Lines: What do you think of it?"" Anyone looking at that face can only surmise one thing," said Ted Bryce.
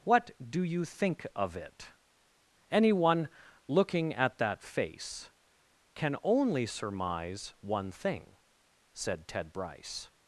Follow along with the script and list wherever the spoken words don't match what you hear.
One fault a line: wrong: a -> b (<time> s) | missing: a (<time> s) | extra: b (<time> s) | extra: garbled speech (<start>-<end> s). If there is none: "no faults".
no faults